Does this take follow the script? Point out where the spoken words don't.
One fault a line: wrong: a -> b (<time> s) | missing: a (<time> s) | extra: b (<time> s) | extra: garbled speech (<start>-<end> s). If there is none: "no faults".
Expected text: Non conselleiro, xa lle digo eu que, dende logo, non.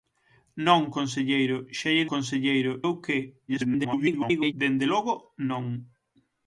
wrong: digo -> conselleiro (2.1 s)
extra: garbled speech (3.5-4.5 s)